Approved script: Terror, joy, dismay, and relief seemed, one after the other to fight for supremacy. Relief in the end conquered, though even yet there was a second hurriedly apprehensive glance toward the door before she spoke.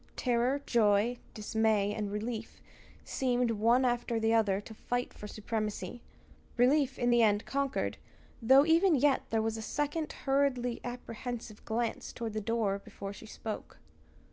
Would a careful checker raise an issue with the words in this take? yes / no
no